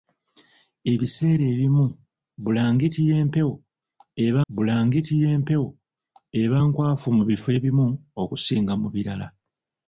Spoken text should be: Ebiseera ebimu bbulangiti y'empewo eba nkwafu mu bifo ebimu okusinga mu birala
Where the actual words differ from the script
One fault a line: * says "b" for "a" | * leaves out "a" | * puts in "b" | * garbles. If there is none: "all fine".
* puts in "bbulangiti y'empewo eba"